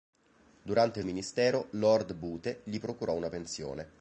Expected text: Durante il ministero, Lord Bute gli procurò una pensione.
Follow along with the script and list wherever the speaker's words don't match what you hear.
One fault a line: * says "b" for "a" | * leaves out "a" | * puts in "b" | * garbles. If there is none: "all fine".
all fine